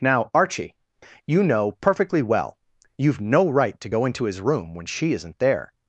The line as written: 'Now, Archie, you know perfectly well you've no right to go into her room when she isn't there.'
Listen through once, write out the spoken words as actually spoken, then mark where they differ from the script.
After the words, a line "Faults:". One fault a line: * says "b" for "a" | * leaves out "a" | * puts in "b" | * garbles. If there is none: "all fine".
'Now, Archie, you know perfectly well you've no right to go into his room when she isn't there.'
Faults:
* says "his" for "her"